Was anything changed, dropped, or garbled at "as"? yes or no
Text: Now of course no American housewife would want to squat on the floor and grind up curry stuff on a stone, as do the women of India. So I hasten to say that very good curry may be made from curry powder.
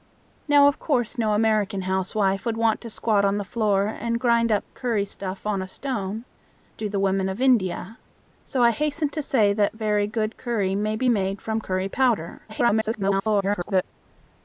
yes